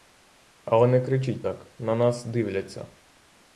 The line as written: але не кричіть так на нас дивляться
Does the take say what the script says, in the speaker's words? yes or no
yes